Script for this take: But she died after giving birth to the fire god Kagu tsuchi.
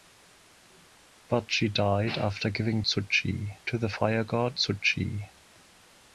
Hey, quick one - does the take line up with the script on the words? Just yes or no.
no